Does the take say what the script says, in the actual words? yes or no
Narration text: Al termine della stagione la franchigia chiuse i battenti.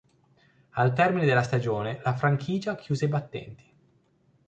yes